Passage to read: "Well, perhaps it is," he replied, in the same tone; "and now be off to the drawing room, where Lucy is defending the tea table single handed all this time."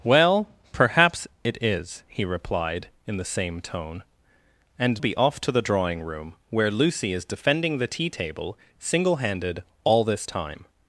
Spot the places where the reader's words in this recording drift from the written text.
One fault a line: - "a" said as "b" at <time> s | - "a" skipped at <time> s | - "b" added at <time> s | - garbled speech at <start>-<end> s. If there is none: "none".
- "now" skipped at 5.0 s